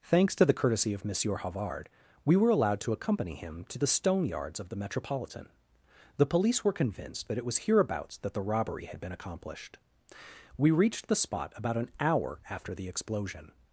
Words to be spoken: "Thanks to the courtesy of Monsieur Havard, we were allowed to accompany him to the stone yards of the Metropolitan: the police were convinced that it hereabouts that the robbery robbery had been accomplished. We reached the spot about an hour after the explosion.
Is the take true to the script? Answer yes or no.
no